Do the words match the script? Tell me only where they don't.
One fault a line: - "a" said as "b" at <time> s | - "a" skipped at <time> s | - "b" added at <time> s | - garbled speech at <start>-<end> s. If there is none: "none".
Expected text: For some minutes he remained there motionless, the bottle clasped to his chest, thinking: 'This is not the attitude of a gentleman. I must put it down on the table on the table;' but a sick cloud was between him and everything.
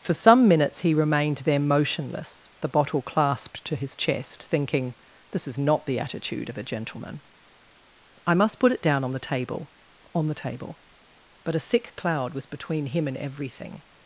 none